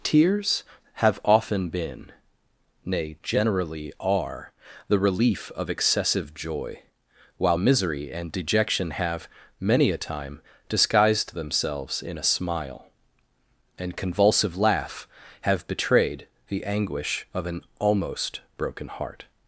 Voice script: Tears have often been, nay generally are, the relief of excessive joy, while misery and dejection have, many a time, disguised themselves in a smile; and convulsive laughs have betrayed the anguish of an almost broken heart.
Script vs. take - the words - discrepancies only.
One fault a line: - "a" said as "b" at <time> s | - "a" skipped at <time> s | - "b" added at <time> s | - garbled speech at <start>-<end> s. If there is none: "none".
- "laughs" said as "laugh" at 14.6 s